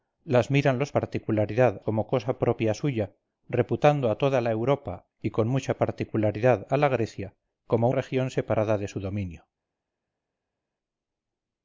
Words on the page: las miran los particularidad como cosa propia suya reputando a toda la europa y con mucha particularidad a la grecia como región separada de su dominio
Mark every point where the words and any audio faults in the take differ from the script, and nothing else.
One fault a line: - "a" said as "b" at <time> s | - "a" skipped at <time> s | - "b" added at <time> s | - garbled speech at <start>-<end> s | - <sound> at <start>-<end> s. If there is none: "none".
none